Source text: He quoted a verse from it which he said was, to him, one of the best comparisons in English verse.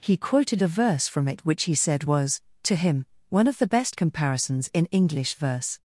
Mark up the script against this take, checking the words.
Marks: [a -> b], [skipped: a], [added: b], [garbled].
He quoted a verse from it which he said was, to him, one of the best comparisons in English verse.